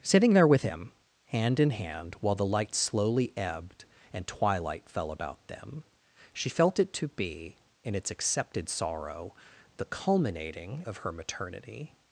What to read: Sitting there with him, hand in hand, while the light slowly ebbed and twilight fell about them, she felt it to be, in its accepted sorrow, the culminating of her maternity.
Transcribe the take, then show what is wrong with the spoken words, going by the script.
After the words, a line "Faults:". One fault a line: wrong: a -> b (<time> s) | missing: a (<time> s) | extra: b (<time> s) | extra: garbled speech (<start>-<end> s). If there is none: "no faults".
Sitting there with him, hand in hand, while the light slowly ebbed and twilight fell about them, she felt it to be, in its accepted sorrow, the culminating of her maternity.
Faults:
no faults